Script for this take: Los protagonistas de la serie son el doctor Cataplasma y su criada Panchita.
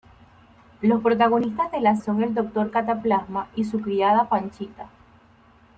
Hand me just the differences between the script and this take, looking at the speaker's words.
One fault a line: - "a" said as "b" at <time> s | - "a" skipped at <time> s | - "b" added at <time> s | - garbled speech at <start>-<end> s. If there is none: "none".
- "serie" skipped at 2.0 s